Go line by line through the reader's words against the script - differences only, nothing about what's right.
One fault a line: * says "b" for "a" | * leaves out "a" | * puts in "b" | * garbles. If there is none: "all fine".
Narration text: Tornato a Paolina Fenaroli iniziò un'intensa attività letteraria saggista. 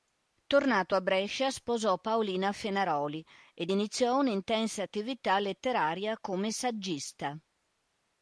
* puts in "Brescia sposò"
* puts in "ed"
* puts in "come"